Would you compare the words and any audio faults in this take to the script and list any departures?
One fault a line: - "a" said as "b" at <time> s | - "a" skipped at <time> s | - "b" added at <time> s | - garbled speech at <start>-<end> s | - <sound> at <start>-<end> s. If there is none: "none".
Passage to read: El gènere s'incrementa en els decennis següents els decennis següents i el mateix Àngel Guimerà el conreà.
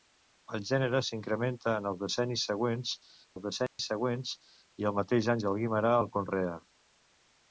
- dropout at 3.7-3.8 s